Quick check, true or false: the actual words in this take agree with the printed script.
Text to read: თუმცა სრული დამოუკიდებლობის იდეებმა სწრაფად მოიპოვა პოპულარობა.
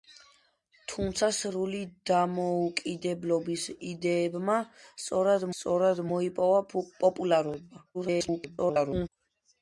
false